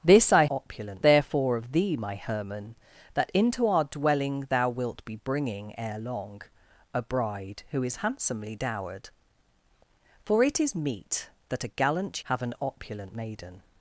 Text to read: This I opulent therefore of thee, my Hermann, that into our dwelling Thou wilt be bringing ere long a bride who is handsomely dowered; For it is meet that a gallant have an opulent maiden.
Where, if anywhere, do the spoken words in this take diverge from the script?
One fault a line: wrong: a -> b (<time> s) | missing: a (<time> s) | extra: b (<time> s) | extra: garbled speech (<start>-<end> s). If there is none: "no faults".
no faults